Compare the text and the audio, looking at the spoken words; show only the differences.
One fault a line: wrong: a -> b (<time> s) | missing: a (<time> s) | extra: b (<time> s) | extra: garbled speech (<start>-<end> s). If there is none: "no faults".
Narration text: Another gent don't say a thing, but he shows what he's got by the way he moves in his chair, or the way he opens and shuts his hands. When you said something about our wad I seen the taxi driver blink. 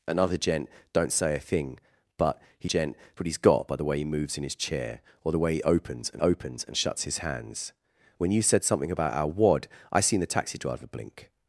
wrong: shows -> gent (2.6 s)
extra: opens and (6.2 s)